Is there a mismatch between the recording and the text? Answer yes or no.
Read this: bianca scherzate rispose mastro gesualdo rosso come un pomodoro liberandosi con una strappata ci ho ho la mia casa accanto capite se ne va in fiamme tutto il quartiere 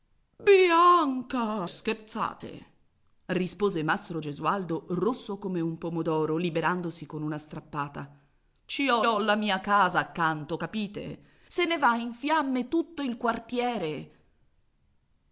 no